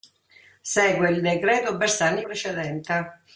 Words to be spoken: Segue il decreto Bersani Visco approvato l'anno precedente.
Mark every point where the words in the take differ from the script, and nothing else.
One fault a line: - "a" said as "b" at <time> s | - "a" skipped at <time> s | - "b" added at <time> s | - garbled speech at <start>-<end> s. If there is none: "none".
- "Visco approvato l'anno" skipped at 2.2 s